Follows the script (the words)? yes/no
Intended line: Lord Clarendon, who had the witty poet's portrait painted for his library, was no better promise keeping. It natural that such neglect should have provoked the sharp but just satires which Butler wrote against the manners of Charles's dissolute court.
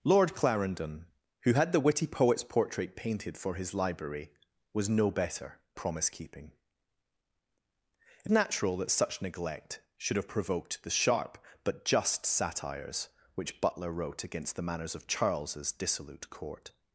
yes